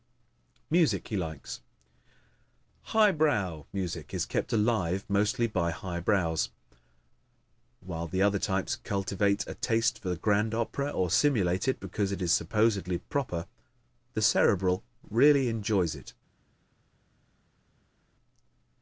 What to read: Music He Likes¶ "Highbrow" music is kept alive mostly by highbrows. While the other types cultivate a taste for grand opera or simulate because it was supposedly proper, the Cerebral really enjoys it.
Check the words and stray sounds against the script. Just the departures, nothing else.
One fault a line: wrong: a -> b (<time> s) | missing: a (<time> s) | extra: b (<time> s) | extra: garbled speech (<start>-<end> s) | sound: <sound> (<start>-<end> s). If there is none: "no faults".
extra: it (11.7 s)
wrong: was -> is (12.2 s)